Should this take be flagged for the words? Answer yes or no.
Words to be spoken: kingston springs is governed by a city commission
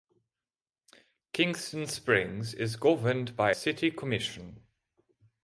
yes